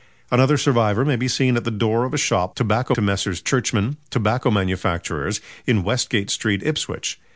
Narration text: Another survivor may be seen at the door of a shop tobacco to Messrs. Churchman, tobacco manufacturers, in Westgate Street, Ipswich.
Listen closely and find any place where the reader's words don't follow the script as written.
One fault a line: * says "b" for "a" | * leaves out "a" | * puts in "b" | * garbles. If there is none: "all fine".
all fine